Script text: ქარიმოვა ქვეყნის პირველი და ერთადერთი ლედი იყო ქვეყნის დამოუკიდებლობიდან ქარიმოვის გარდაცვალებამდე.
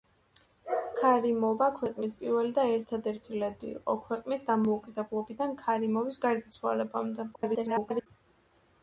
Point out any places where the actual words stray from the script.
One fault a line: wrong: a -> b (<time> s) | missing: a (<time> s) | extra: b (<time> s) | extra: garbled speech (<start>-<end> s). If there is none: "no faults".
extra: garbled speech (7.3-8.1 s)